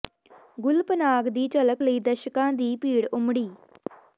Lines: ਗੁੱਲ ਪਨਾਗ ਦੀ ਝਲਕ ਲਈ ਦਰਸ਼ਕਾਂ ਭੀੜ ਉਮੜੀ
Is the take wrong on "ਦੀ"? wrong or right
right